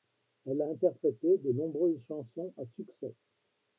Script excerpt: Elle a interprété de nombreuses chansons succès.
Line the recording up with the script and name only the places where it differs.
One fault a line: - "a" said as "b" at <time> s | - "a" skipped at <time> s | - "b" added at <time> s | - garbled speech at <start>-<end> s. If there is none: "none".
- "à" added at 2.6 s